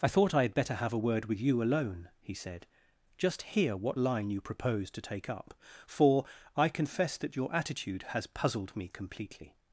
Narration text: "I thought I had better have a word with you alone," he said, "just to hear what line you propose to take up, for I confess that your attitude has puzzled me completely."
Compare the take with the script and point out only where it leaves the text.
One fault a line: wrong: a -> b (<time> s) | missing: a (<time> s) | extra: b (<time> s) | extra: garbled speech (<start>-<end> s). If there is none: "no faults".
missing: to (3.4 s)